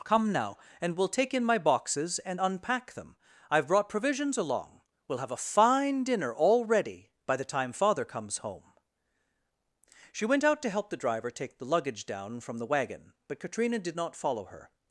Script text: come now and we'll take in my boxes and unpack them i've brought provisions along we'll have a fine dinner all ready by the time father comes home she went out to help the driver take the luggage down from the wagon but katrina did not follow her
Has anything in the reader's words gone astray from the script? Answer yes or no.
no